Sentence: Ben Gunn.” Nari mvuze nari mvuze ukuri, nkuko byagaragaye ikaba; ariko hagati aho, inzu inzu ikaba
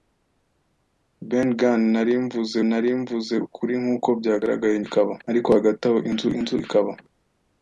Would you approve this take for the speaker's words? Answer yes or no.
yes